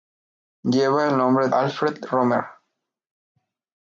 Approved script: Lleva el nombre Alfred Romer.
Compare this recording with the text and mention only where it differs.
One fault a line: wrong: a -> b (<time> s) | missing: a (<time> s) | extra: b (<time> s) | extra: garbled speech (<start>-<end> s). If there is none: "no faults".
no faults